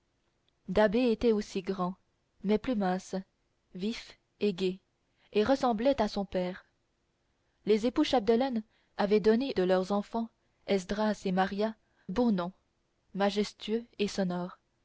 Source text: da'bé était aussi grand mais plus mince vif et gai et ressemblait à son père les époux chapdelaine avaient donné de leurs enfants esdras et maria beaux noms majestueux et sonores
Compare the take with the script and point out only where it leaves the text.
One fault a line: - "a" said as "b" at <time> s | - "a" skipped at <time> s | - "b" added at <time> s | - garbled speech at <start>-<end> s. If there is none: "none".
none